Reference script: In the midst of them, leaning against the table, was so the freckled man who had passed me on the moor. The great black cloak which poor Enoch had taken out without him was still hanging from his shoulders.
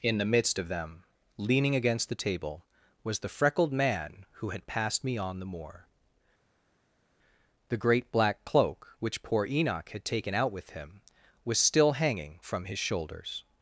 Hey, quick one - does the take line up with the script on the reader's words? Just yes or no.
no